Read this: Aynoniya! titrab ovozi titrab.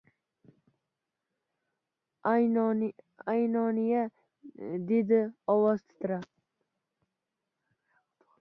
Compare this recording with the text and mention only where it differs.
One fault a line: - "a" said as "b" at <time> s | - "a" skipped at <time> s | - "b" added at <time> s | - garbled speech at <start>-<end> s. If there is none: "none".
- "titrab" said as "dedi" at 4.9 s